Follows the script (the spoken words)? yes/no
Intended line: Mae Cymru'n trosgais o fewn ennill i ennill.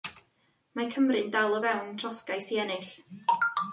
no